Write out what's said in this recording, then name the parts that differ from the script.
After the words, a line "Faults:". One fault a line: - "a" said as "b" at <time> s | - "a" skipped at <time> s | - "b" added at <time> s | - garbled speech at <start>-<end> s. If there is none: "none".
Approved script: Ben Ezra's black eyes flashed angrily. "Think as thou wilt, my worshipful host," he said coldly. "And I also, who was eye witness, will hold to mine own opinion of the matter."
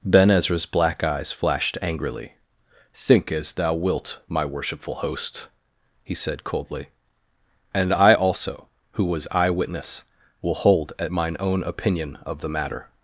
Ben Ezra's black eyes flashed angrily. "Think as thou wilt, my worshipful host," he said coldly. "And I also, who was eye witness, will hold at mine own opinion of the matter."
Faults:
- "to" said as "at" at 11.0 s